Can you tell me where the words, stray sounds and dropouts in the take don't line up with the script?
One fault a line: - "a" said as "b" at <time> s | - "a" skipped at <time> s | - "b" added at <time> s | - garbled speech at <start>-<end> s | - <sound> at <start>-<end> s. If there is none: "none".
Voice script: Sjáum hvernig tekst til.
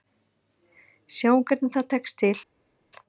- "það" added at 1.8 s